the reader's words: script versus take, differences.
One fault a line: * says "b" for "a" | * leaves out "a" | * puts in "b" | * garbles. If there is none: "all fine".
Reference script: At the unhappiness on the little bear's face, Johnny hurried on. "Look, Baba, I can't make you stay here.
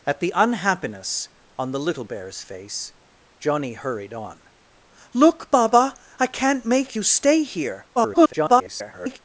* garbles